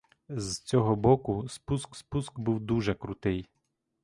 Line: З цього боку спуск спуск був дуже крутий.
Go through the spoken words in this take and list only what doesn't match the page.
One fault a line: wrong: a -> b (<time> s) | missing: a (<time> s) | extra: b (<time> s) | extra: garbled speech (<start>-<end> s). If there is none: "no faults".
no faults